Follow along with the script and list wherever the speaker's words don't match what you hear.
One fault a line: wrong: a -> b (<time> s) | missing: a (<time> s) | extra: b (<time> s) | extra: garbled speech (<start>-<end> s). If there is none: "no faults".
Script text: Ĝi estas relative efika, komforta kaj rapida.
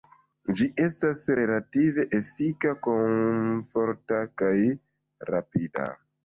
no faults